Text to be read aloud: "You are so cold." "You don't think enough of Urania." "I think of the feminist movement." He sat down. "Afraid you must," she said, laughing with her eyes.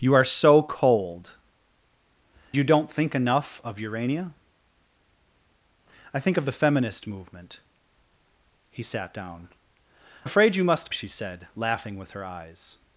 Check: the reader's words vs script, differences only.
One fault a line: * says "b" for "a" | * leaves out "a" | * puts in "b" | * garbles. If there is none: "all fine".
all fine